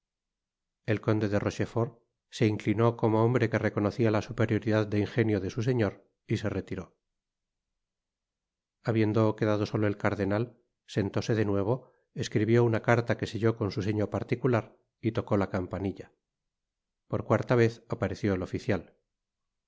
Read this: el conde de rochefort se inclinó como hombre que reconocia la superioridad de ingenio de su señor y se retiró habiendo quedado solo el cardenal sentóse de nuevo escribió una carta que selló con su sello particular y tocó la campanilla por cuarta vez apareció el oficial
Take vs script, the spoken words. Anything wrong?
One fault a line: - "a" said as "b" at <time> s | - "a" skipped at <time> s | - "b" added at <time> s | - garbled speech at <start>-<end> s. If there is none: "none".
none